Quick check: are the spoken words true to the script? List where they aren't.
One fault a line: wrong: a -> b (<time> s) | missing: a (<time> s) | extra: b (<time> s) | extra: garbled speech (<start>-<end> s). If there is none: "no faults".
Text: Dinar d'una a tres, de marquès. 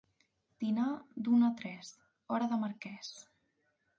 extra: hora (2.4 s)